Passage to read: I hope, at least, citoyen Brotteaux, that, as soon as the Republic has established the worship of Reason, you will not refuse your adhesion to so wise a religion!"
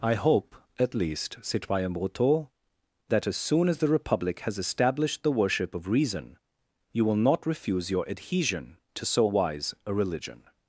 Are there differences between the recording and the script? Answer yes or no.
no